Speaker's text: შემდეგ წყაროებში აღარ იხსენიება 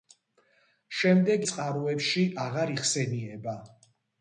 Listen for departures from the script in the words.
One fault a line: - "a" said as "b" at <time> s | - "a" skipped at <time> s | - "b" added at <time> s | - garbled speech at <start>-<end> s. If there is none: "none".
none